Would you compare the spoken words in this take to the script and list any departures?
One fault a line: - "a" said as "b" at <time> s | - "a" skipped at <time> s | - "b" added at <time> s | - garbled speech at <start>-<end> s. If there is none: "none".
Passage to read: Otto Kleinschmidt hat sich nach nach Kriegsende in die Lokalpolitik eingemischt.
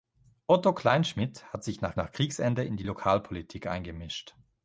none